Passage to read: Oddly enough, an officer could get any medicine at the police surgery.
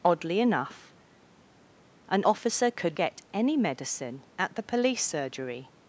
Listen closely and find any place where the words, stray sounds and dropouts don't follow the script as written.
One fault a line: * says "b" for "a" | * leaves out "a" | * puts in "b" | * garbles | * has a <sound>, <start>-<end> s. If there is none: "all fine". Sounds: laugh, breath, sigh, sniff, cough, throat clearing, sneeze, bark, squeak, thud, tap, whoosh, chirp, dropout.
all fine